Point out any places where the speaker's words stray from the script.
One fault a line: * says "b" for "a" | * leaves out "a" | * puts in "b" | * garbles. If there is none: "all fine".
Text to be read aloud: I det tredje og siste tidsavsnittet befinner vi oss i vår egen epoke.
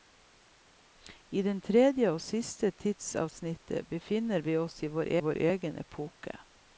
* puts in "vår"